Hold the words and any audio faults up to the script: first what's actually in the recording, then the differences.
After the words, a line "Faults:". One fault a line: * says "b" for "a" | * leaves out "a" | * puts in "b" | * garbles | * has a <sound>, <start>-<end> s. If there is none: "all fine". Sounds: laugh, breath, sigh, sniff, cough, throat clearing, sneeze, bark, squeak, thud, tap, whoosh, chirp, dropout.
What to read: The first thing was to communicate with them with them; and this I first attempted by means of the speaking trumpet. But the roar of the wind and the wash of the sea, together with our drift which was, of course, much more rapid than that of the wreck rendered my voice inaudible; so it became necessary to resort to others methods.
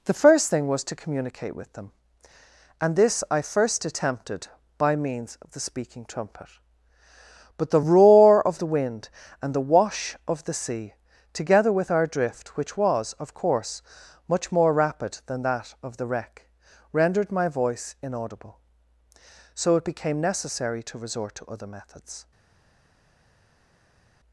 The first thing was to communicate with them; and this I first attempted by means of the speaking trumpet. But the roar of the wind and the wash of the sea, together with our drift which was, of course, much more rapid than that of the wreck rendered my voice inaudible; so it became necessary to resort to other methods.
Faults:
* leaves out "with them"
* says "other" for "others"